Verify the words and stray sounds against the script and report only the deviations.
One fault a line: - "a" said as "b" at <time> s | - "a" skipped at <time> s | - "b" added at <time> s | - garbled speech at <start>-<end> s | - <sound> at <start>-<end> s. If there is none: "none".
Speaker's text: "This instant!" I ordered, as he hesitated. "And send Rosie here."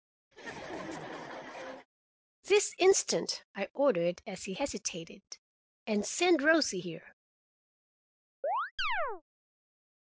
- laugh at 0.3-1.9 s
- chirp at 8.4-9.2 s